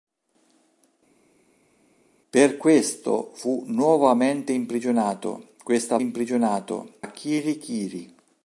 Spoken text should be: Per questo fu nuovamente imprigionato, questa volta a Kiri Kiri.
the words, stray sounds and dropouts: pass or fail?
fail